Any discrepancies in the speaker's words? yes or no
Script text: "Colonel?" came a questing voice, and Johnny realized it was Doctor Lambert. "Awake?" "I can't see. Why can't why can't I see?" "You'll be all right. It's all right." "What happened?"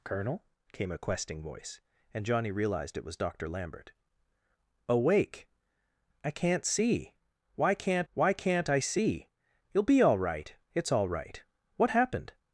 no